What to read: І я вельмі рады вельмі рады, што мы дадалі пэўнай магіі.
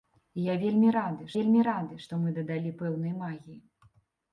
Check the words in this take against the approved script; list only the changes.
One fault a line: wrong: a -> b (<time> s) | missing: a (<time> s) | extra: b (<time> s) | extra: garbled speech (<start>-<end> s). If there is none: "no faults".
no faults